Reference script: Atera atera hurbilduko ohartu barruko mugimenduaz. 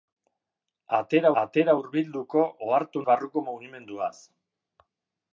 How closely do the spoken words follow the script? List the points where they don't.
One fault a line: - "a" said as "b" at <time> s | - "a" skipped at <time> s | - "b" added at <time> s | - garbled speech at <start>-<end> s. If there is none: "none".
none